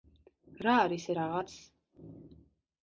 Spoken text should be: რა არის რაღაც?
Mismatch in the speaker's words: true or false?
false